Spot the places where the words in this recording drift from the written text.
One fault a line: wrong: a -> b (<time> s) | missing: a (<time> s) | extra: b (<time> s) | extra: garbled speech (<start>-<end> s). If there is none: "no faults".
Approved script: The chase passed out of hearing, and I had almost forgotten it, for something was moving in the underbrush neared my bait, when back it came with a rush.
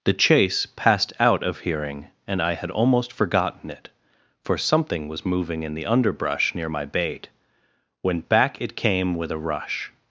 wrong: neared -> near (6.5 s)